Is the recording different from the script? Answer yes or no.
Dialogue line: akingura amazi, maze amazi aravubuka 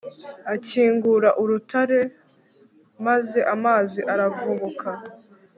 yes